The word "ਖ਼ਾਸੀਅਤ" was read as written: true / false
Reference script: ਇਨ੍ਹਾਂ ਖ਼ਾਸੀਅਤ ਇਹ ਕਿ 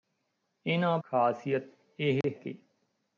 true